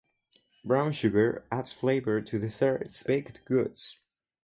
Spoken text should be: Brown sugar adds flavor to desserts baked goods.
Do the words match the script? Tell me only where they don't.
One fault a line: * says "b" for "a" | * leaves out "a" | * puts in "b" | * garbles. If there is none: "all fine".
all fine